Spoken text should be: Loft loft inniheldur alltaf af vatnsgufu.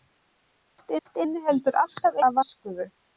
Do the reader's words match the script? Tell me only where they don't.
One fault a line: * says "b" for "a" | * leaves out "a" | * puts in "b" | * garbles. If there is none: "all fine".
all fine